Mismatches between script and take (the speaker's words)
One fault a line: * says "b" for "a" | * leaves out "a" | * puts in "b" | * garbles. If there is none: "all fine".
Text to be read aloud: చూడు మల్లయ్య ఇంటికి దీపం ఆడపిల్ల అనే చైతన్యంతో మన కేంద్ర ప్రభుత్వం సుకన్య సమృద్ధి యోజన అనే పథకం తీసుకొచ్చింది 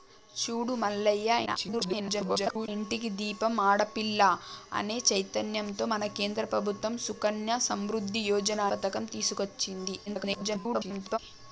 * garbles
* leaves out "అనే"
* garbles